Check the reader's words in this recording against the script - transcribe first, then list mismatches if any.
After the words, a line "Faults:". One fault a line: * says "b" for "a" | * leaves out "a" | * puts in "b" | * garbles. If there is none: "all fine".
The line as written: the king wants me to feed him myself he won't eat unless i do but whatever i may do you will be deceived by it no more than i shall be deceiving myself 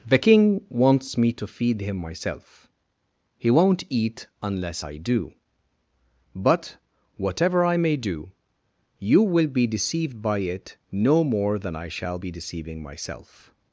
the king wants me to feed him myself he won't eat unless i do but whatever i may do you will be deceived by it no more than i shall be deceiving myself
Faults:
all fine